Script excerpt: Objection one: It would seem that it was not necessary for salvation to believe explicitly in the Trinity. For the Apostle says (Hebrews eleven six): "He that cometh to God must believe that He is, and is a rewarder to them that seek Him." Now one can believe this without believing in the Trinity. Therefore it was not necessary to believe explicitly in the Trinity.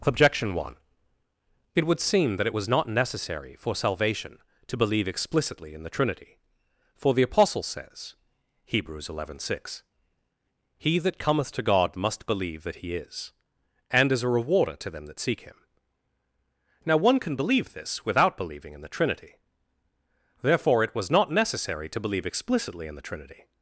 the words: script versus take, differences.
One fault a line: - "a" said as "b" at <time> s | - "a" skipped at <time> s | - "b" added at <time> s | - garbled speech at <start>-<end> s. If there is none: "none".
none